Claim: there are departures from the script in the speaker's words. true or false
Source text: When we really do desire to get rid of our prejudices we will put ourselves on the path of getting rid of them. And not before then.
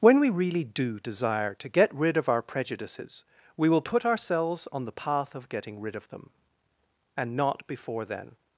false